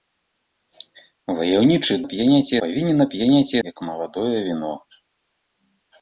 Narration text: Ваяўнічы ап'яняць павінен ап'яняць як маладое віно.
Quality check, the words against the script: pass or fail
pass